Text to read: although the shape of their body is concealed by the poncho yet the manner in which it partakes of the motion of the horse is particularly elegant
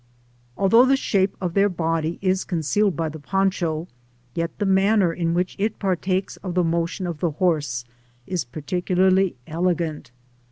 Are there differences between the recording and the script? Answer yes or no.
no